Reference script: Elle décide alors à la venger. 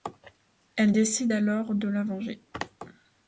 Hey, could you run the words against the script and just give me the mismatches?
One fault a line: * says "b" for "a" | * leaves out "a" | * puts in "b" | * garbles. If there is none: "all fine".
* says "de" for "à"